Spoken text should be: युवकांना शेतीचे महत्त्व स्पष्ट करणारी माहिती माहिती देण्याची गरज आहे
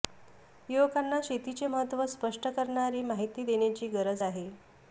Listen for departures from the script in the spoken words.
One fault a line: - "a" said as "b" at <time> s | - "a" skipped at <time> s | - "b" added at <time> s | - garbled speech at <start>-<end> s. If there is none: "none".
- "माहिती" skipped at 3.4 s